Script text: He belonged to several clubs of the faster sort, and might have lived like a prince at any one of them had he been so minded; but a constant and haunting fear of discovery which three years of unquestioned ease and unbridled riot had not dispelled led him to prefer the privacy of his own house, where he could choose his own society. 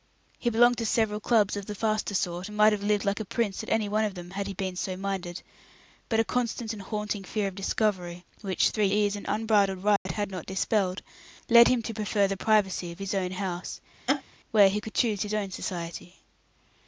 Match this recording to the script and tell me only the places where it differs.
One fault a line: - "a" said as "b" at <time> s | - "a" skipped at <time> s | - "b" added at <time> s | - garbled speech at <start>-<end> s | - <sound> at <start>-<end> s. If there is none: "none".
- "years of unquestioned" skipped at 8.9 s
- dropout at 10.0-10.1 s
- laugh at 14.1-14.2 s